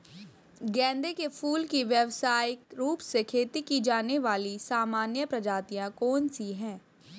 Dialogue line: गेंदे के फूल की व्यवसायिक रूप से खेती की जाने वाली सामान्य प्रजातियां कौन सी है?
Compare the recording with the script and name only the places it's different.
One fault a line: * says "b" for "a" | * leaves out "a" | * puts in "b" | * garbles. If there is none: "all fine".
all fine